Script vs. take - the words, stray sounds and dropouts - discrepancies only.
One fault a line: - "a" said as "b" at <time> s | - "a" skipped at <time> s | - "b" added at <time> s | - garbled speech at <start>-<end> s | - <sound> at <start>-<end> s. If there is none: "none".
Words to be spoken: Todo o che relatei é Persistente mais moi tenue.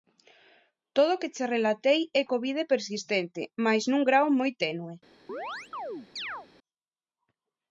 - "que" added at 1.2 s
- "Covid" added at 2.3 s
- "nun grao" added at 3.9 s
- chirp at 5.3-6.5 s